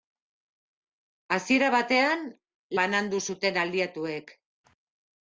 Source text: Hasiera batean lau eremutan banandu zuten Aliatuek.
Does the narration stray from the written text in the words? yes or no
yes